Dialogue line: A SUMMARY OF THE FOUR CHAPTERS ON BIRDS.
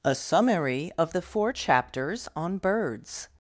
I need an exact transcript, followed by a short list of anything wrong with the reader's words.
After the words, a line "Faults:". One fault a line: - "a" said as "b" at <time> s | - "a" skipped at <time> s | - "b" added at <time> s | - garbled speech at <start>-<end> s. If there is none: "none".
A SUMMARY OF THE FOUR CHAPTERS ON BIRDS.
Faults:
none